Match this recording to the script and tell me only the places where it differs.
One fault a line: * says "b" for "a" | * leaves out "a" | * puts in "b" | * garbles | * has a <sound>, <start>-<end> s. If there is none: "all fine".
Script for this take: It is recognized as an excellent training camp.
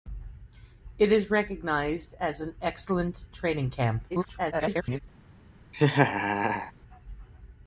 * garbles
* has a laugh, 5.7-6.7 s